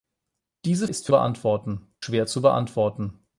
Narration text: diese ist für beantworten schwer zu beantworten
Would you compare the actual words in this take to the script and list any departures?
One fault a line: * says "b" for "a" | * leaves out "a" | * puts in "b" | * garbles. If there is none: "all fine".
all fine